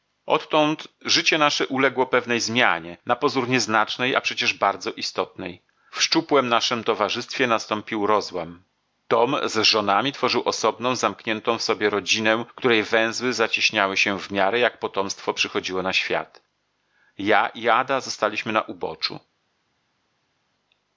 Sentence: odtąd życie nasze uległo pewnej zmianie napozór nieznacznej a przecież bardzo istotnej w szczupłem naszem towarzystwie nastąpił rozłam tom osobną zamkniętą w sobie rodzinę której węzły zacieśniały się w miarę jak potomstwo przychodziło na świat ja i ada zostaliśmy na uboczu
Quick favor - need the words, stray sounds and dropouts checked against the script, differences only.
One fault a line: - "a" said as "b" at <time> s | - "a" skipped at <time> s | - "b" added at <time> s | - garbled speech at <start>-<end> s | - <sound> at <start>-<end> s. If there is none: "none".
- "z żonami tworzył" added at 9.4 s